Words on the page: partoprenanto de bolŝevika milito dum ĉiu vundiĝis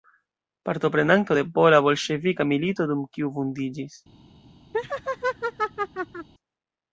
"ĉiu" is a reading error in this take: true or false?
true